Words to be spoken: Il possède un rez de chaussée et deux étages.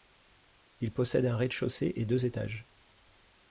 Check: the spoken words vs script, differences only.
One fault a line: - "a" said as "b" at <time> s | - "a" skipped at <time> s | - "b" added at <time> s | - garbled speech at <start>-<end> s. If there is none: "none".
none